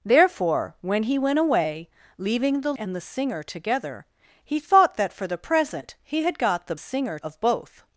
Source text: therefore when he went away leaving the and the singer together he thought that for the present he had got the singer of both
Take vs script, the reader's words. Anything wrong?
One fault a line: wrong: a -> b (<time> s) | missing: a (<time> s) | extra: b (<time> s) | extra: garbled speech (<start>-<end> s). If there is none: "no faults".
no faults